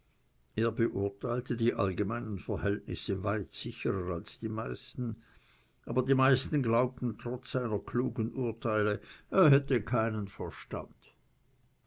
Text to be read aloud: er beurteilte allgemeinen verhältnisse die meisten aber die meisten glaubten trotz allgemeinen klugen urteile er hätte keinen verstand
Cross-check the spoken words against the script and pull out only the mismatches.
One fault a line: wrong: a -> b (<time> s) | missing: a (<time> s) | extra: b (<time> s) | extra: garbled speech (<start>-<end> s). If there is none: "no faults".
extra: die (1.6 s)
extra: weit sicherer als (3.2 s)
wrong: allgemeinen -> seiner (7.5 s)